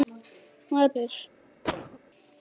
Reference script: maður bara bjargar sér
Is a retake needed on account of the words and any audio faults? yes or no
yes